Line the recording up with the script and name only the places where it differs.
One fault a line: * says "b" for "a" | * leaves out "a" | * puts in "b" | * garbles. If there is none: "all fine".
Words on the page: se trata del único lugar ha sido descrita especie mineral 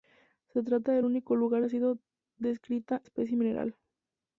all fine